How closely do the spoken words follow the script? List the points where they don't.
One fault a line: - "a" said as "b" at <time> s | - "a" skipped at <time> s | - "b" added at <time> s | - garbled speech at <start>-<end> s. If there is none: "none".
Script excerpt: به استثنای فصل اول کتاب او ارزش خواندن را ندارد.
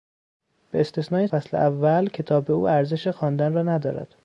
none